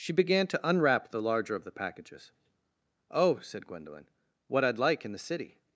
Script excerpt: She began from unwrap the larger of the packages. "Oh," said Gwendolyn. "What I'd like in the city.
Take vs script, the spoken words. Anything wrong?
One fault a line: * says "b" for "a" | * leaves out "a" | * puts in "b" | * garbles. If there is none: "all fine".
* says "to" for "from"